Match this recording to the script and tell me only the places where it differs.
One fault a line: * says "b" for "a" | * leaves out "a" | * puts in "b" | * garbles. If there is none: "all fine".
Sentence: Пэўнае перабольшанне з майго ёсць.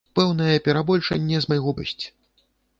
all fine